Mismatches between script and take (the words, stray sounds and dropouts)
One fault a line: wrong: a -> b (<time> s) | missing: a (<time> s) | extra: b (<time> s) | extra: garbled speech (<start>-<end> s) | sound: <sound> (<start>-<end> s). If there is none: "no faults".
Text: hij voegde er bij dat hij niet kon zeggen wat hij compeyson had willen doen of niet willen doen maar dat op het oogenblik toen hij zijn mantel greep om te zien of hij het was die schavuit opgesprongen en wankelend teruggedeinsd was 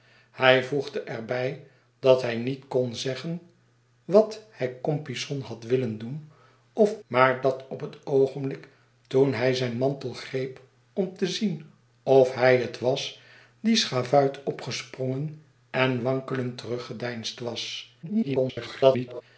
missing: niet willen doen (7.0 s)
extra: garbled speech (18.0-19.2 s)